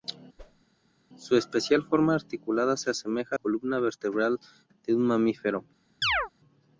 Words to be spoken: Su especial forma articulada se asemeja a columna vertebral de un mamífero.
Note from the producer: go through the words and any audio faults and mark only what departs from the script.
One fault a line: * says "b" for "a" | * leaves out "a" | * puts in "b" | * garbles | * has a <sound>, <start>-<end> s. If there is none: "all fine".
* has a whoosh, 0.4-0.6 s
* has a chirp, 6.0-6.3 s